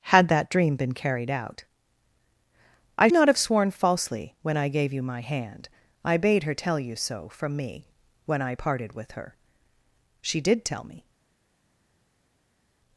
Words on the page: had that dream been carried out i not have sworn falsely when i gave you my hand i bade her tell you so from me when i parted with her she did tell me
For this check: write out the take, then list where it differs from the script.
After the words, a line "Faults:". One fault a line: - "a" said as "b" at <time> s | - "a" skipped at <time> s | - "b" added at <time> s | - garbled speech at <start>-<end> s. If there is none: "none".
had that dream been carried out i not have sworn falsely when i gave you my hand i bade her tell you so from me when i parted with her she did tell me
Faults:
none